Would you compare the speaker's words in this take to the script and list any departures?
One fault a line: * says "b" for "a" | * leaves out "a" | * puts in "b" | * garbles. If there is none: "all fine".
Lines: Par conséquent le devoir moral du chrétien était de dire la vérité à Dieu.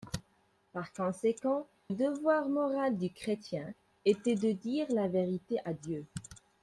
* leaves out "le"